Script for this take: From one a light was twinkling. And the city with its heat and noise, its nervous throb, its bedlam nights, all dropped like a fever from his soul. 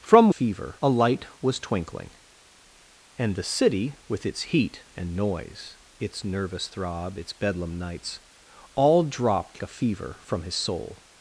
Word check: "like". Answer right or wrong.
wrong